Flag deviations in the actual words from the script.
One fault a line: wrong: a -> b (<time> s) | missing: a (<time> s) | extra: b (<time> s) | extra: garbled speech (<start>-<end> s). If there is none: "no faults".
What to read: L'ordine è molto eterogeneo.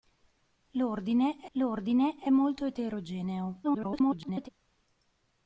extra: l'ordine è (1.5 s)
extra: garbled speech (3.6-4.5 s)